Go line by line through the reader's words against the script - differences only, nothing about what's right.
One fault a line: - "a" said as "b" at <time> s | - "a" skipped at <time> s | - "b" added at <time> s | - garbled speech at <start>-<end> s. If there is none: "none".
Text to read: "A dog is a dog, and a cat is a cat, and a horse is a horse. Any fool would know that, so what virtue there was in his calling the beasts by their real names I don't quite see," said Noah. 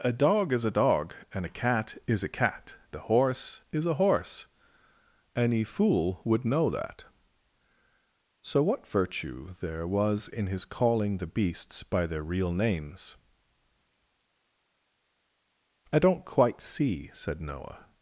- "and" skipped at 2.8 s